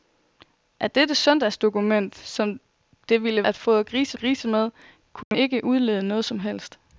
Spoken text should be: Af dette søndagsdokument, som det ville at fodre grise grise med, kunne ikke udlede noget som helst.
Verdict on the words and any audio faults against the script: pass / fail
fail